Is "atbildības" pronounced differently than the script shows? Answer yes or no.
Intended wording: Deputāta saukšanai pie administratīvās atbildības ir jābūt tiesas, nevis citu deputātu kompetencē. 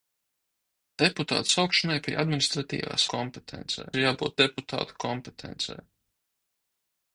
yes